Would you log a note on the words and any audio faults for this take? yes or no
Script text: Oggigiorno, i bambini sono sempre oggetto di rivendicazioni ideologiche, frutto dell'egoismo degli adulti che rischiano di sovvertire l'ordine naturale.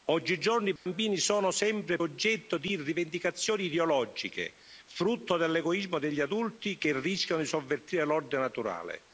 yes